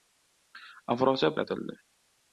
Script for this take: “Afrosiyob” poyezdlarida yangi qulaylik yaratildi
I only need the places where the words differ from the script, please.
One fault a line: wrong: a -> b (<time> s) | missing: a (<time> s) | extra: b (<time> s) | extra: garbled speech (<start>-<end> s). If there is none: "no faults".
missing: poyezdlarida yangi qulaylik (1.4 s)